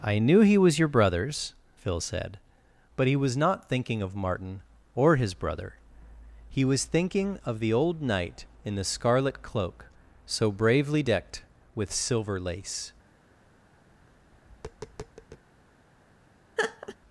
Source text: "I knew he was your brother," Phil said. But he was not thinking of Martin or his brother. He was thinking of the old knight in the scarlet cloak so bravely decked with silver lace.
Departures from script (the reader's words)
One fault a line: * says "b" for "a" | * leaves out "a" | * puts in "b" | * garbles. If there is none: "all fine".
* says "brothers" for "brother"